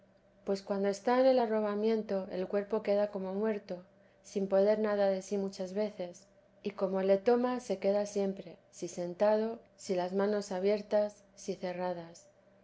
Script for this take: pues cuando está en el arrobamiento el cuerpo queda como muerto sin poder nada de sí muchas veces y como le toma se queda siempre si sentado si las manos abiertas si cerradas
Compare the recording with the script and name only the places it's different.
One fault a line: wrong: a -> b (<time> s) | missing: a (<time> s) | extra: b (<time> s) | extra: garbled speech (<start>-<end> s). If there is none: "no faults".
no faults